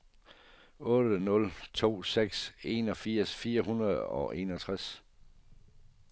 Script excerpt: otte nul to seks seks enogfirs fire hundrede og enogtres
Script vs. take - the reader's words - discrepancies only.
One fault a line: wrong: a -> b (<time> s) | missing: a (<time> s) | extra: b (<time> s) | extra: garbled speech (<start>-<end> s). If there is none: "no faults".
missing: seks (2.4 s)